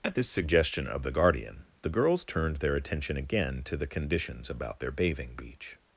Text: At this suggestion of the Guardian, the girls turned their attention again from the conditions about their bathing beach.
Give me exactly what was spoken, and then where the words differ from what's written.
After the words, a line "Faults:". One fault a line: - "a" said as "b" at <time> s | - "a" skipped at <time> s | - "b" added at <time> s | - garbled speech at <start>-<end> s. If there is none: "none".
At this suggestion of the Guardian, the girls turned their attention again to the conditions about their bathing beach.
Faults:
- "from" said as "to" at 3.6 s